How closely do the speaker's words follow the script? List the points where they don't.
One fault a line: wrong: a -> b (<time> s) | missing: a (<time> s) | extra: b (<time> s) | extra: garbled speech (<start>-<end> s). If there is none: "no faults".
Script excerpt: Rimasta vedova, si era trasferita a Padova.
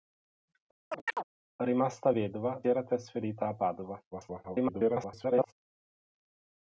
missing: si (2.6 s)
extra: garbled speech (4.1-5.5 s)